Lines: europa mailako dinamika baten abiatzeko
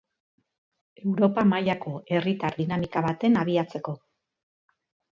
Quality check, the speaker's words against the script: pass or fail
fail